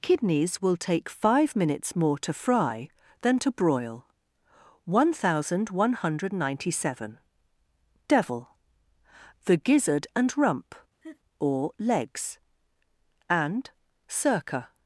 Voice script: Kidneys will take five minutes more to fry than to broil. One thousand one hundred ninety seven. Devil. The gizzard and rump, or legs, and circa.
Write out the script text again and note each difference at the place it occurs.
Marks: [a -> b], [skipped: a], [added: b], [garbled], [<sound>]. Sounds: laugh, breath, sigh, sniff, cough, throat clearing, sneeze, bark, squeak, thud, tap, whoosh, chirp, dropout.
Kidneys will take five minutes more to fry than to broil. One thousand one hundred ninety seven. Devil. The gizzard and rump, [laugh] or legs, and circa.